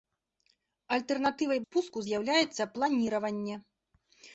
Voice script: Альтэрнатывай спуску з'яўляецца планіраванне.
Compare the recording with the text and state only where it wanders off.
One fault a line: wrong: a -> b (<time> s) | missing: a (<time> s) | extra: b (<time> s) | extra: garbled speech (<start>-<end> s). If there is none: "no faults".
no faults